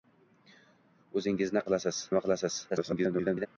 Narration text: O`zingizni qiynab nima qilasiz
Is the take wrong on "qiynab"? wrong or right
wrong